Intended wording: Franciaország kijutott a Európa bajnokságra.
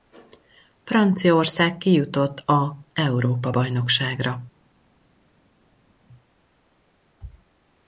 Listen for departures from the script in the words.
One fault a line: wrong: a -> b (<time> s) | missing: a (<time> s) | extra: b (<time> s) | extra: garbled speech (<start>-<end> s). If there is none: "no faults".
no faults